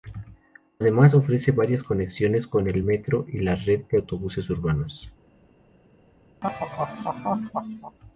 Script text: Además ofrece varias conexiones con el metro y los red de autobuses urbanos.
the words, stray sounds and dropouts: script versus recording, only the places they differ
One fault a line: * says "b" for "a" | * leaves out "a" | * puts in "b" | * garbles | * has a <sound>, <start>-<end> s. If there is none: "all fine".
* says "la" for "los"
* has a laugh, 6.4-8.0 s